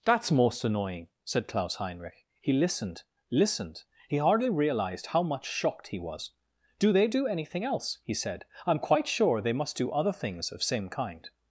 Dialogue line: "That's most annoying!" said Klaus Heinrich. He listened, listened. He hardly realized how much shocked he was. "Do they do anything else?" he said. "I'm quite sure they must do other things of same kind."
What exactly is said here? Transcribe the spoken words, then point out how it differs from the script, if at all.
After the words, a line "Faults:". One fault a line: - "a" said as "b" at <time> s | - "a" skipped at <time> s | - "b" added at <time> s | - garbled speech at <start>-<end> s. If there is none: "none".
"That's most annoying!" said Klaus Heinrich. He listened, listened. He hardly realized how much shocked he was. "Do they do anything else?" he said. "I'm quite sure they must do other things of same kind."
Faults:
none